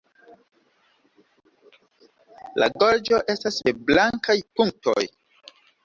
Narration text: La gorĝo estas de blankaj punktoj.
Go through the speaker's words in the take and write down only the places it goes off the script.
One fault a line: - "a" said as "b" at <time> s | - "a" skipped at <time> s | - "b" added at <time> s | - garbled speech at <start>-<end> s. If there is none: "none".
none